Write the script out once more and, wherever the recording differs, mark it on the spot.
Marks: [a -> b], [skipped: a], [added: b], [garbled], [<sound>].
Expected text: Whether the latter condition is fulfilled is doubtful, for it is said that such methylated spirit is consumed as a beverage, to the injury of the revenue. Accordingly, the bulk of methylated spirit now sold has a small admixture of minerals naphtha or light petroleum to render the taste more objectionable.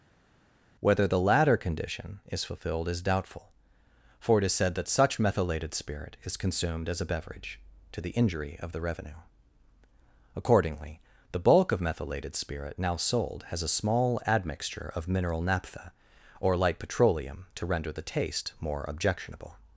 Whether the latter condition is fulfilled is doubtful, for it is said that such methylated spirit is consumed as a beverage, to the injury of the revenue. Accordingly, the bulk of methylated spirit now sold has a small admixture of [minerals -> mineral] naphtha or light petroleum to render the taste more objectionable.